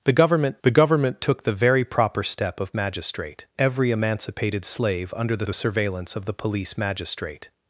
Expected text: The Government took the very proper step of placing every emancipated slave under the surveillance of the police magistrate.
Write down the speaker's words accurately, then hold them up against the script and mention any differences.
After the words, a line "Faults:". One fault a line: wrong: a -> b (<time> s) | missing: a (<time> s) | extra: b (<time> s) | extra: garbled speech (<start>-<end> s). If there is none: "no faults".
The Government the Government took the very proper step of magistrate every emancipated slave under the the surveillance of the police magistrate.
Faults:
extra: the Government (0.6 s)
wrong: placing -> magistrate (2.7 s)
extra: the (5.4 s)